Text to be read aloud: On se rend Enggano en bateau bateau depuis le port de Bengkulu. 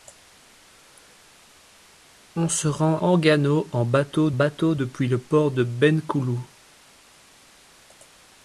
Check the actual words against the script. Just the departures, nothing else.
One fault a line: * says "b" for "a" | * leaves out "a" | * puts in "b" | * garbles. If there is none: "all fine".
all fine